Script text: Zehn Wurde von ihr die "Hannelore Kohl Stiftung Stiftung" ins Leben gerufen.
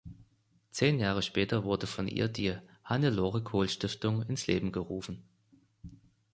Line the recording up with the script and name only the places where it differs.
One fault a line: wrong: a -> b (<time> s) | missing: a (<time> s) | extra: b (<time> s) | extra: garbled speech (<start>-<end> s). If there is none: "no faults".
extra: Jahre später (1.0 s)
missing: Stiftung (4.2 s)